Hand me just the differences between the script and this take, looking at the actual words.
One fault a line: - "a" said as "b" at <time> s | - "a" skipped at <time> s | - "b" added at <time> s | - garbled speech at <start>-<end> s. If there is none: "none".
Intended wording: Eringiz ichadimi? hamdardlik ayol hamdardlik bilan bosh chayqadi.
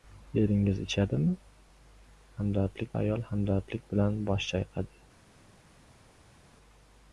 none